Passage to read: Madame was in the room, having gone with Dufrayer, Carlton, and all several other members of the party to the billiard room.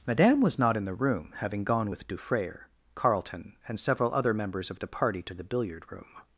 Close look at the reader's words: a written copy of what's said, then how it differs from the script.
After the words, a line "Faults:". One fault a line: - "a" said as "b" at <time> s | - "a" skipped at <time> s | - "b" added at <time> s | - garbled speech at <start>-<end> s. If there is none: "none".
Madame was not in the room, having gone with Dufrayer, Carlton, and several other members of the party to the billiard room.
Faults:
- "not" added at 0.6 s
- "all" skipped at 3.8 s